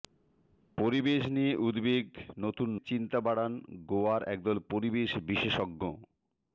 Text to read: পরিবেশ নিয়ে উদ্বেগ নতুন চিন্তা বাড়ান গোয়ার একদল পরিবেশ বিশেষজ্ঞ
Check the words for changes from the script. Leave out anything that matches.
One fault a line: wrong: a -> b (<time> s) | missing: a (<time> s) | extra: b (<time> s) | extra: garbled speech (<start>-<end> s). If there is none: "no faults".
no faults